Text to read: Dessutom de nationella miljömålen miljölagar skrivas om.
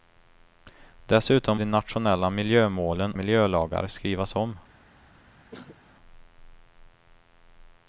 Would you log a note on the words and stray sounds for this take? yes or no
yes